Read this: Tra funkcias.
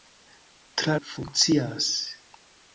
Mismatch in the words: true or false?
false